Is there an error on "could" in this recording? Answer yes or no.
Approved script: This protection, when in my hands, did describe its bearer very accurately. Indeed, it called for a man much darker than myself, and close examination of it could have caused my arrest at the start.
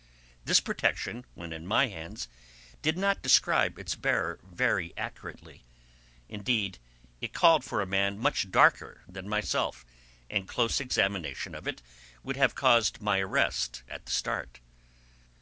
yes